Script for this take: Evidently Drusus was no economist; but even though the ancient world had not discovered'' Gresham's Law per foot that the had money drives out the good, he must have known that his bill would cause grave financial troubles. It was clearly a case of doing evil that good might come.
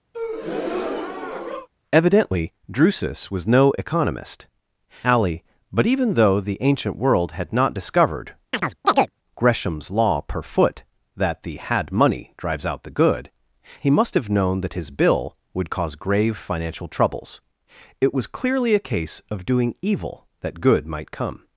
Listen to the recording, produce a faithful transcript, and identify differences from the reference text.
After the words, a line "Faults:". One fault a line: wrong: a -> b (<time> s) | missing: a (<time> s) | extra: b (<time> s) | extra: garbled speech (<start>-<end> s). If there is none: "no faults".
Evidently Drusus was no economist; alley but even though the ancient world had not discovered'' Gresham's Law per foot that the had money drives out the good, he must have known that his bill would cause grave financial troubles. It was clearly a case of doing evil that good might come.
Faults:
extra: alley (5.0 s)